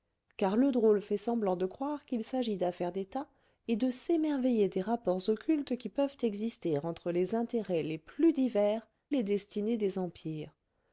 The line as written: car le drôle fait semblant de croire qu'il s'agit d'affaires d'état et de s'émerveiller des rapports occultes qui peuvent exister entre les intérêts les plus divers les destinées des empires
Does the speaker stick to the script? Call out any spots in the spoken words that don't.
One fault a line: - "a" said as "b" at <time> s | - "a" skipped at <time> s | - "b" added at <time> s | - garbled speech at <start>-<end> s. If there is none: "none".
none